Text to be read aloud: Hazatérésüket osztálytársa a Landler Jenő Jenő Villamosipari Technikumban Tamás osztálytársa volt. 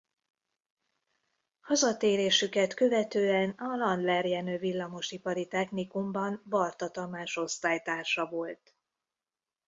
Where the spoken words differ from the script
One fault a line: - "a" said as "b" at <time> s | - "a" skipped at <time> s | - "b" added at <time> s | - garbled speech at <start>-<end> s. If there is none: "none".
- "osztálytársa" said as "követően" at 2.7 s
- "Jenő" skipped at 4.6 s
- "Barta" added at 6.5 s